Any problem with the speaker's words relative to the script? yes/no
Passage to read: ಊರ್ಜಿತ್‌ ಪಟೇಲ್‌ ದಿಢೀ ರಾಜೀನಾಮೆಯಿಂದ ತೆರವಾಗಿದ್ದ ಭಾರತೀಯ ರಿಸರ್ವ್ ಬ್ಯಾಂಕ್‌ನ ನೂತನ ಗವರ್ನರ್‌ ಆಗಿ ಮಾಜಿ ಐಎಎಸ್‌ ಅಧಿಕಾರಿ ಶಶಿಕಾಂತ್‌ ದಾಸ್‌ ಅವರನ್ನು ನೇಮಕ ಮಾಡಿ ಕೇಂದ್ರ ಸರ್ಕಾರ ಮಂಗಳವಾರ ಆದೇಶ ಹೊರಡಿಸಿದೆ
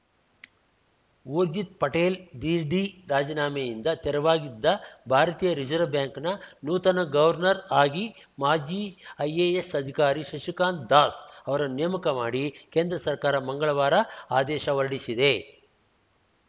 no